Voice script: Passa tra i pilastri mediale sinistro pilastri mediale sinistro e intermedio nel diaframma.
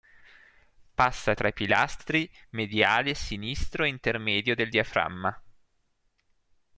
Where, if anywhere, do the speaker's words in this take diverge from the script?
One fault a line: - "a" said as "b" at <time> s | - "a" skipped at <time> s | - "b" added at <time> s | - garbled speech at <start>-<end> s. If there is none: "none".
- "pilastri mediale sinistro" skipped at 3.8 s
- "nel" said as "del" at 4.5 s